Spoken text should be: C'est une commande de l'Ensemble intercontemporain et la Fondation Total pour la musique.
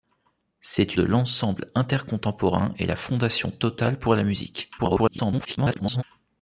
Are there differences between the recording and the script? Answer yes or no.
yes